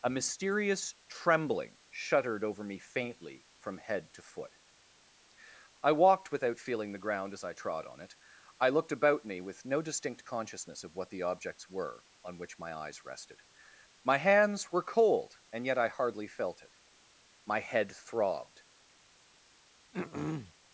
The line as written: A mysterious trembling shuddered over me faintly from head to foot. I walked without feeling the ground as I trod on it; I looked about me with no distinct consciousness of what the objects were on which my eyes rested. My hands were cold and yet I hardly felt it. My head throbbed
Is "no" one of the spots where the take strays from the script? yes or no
no